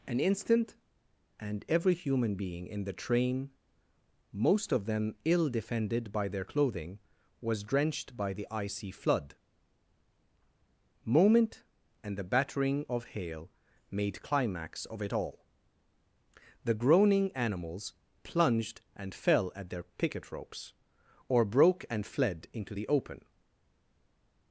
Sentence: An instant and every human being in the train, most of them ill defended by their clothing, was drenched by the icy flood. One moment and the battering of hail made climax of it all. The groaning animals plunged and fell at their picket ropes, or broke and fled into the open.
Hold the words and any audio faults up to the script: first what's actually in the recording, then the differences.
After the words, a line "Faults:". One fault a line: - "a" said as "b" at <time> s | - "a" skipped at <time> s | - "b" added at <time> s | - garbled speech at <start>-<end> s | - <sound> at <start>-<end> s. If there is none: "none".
An instant and every human being in the train, most of them ill defended by their clothing, was drenched by the icy flood. moment and the battering of hail made climax of it all. The groaning animals plunged and fell at their picket ropes, or broke and fled into the open.
Faults:
- "One" skipped at 9.4 s